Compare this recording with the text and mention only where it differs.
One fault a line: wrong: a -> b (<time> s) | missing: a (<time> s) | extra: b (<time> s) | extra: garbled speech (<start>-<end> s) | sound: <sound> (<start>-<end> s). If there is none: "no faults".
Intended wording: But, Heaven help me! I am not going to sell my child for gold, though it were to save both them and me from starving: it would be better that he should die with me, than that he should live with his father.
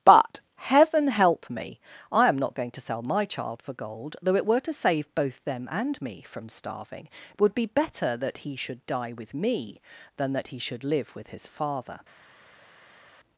no faults